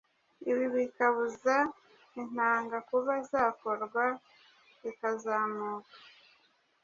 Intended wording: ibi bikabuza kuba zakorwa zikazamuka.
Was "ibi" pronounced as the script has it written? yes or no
yes